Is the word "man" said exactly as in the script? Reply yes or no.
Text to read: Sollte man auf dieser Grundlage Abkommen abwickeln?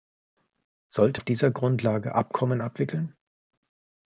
no